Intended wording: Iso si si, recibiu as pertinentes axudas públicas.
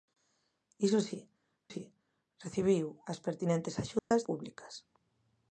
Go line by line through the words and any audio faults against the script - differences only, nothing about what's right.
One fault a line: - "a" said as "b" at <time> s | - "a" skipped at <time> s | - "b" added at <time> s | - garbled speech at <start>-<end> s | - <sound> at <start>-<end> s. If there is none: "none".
- dropout at 4.0-4.1 s